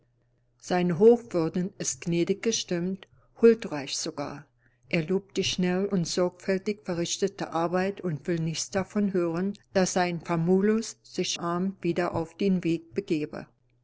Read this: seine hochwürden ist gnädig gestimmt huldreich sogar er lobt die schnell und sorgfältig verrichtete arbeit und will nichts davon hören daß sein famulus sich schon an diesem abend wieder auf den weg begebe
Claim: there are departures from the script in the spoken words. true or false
true